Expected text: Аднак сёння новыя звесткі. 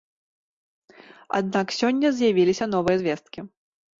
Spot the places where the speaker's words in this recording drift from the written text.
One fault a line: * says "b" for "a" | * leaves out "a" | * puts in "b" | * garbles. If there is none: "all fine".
* puts in "з'явіліся"